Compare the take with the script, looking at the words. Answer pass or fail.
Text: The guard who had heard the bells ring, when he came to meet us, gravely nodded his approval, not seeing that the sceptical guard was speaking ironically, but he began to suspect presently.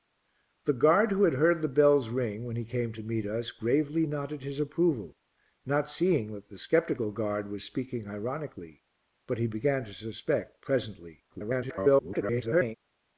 fail